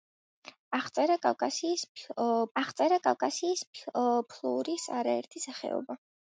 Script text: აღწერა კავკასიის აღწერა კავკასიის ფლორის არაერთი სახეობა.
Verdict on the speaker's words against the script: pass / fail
pass